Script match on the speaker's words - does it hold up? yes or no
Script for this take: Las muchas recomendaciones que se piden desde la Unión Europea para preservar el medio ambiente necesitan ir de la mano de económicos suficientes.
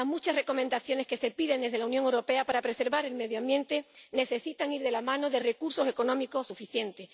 no